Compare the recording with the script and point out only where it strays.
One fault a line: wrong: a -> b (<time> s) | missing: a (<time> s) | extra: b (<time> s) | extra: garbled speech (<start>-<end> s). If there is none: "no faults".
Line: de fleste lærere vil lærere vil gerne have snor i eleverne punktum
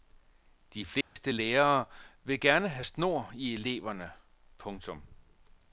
missing: lærere vil (2.4 s)